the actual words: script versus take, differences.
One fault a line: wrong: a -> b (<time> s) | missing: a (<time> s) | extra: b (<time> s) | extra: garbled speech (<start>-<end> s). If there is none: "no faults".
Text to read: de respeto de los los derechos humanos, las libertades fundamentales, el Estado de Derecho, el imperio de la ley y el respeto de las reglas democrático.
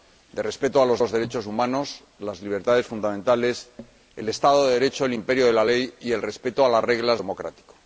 no faults